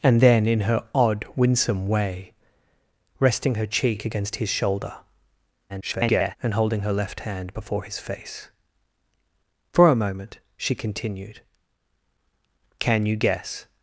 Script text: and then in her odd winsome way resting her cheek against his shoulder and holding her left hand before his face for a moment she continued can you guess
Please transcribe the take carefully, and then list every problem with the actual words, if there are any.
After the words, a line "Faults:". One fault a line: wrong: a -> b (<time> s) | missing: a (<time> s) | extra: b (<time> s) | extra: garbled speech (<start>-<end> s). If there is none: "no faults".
and then in her odd winsome way resting her cheek against his shoulder [garbled] and holding her left hand before his face for a moment she continued can you guess
Faults:
extra: garbled speech (5.7-6.4 s)